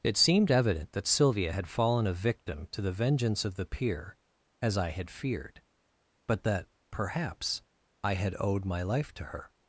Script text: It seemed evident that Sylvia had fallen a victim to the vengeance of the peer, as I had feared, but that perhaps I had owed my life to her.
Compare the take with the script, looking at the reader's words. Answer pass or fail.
pass